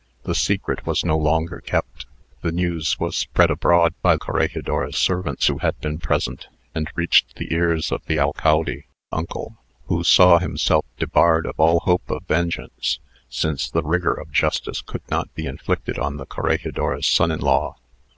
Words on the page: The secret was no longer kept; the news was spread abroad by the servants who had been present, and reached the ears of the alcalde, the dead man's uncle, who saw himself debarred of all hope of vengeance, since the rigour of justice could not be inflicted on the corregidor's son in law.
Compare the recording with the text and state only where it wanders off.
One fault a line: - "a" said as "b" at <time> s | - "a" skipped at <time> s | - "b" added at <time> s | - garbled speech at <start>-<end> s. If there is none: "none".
- "the" said as "corregidor's" at 4.1 s
- "the dead man's" skipped at 8.8 s